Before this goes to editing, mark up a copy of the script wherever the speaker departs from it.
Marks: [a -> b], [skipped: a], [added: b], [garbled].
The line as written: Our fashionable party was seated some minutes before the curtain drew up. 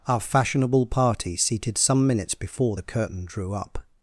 Our fashionable party [skipped: was] seated some minutes before the curtain drew up.